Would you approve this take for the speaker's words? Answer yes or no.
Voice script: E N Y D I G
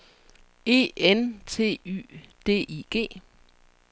no